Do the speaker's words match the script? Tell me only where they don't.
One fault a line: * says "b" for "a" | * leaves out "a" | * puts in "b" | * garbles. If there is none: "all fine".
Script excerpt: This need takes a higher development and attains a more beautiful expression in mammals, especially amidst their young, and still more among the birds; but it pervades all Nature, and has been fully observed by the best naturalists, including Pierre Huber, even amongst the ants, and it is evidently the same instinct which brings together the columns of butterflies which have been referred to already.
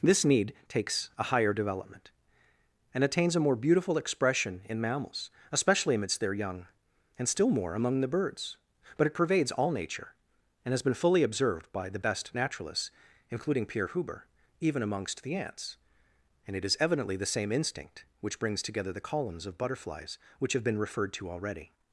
all fine